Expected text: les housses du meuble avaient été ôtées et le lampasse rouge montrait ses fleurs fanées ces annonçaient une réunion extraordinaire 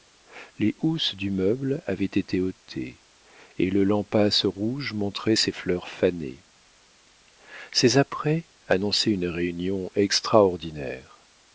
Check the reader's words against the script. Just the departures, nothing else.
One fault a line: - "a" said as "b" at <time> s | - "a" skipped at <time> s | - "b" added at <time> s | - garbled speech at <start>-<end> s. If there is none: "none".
- "apprêts" added at 8.0 s